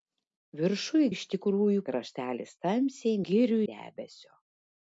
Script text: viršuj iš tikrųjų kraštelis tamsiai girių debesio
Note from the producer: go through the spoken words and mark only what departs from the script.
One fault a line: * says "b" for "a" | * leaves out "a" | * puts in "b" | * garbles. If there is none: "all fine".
all fine